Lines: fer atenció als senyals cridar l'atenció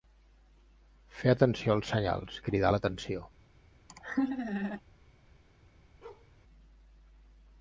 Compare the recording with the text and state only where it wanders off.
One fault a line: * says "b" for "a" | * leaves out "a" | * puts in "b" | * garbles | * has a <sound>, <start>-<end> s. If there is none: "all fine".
* has a laugh, 3.9-4.8 s
* has a bark, 6.0-6.3 s